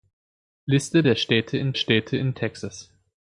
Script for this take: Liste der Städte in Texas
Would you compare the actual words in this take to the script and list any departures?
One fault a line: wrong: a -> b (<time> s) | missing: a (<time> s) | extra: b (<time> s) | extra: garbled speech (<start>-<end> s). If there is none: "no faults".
extra: Städte in (1.7 s)